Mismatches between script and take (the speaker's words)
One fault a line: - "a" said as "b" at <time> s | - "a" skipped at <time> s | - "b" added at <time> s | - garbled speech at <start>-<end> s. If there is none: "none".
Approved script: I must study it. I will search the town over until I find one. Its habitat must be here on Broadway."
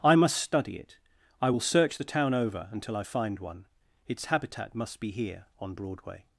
none